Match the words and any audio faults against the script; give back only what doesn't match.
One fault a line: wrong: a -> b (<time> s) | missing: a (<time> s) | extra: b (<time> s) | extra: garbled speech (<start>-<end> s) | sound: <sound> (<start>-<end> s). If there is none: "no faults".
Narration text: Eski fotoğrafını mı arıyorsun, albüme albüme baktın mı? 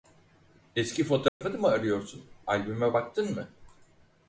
sound: dropout (1.3-1.4 s)
missing: albüme (3.0 s)